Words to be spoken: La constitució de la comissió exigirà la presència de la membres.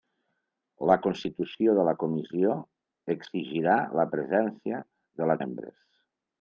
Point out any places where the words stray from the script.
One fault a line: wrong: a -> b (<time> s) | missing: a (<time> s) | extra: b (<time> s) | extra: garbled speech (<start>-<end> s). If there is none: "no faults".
no faults